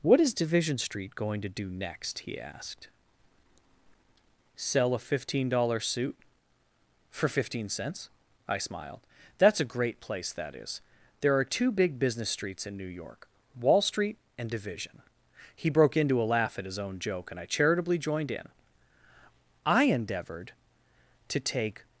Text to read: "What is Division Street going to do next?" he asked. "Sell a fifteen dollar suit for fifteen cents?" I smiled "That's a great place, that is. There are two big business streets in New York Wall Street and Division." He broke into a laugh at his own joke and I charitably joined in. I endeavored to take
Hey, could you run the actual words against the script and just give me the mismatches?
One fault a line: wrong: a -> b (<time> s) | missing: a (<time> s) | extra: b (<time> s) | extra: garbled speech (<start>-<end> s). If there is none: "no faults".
no faults